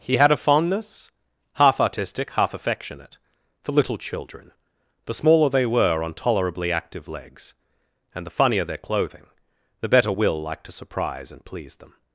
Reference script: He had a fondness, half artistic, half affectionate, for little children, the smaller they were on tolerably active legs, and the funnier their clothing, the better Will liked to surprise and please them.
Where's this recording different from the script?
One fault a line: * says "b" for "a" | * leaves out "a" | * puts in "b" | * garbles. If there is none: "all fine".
all fine